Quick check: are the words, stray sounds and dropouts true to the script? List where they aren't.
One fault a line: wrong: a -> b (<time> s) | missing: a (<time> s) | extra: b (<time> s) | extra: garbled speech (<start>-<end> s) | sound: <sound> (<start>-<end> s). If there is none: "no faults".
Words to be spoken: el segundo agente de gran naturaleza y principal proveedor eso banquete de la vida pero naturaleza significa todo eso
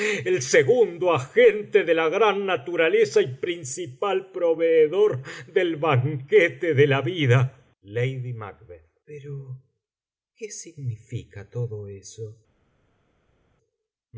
extra: la (1.9 s)
wrong: eso -> del (5.5 s)
wrong: naturaleza -> qué (10.4 s)